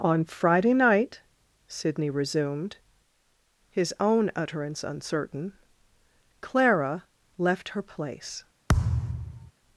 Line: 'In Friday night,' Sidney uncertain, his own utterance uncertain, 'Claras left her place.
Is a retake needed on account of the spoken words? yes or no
yes